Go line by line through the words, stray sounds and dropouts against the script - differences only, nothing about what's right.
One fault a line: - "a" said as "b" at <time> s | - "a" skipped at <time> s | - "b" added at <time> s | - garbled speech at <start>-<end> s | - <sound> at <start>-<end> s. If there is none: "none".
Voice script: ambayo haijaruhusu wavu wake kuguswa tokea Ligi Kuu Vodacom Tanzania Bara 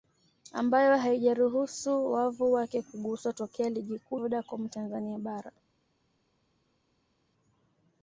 none